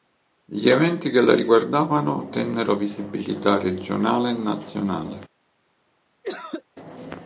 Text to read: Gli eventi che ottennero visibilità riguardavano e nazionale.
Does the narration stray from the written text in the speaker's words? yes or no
yes